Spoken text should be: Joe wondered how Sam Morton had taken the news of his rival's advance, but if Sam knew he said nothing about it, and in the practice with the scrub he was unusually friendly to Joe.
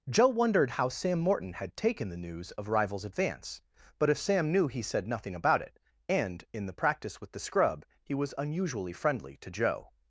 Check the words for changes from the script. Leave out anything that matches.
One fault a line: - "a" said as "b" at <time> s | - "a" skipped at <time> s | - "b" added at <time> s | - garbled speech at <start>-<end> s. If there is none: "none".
- "his" skipped at 2.7 s